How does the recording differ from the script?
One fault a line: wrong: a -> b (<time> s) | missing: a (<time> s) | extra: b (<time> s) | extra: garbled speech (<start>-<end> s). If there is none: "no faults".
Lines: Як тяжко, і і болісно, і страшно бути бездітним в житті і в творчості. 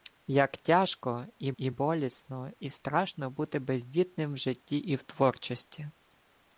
no faults